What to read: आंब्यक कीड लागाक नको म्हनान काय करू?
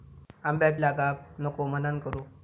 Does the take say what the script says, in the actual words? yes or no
no